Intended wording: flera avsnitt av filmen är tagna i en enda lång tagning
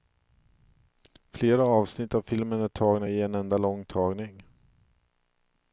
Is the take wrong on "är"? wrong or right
right